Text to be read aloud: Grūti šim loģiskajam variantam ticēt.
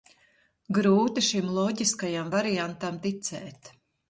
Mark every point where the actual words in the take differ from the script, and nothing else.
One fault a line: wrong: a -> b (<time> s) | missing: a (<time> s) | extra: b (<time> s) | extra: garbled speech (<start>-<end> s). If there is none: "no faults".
no faults